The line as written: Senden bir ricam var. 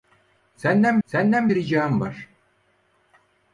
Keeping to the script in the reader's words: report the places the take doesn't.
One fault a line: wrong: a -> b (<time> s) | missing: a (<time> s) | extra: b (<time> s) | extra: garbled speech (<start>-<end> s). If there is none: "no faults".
extra: senden (1.0 s)